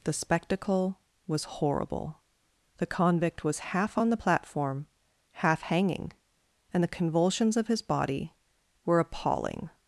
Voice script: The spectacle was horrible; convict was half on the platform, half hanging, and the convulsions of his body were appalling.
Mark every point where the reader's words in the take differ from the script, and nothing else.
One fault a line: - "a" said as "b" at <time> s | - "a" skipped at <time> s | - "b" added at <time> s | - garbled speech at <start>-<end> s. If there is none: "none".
- "the" added at 2.8 s